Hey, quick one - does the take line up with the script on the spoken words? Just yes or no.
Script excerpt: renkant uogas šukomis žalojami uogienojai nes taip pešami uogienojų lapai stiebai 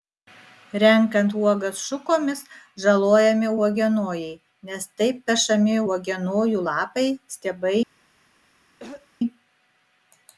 yes